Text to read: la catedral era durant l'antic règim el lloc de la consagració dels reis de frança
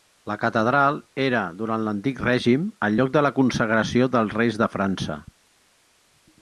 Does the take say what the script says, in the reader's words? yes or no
yes